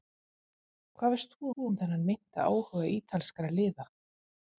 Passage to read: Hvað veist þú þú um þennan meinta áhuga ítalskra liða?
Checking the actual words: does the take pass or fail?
pass